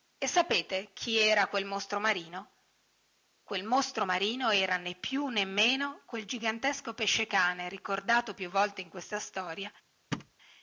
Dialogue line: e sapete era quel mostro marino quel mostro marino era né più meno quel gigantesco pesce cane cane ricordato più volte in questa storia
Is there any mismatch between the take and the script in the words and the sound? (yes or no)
yes